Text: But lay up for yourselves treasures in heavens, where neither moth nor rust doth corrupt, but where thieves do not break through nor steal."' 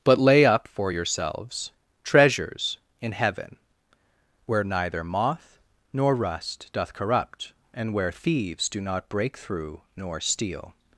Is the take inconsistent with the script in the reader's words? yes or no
yes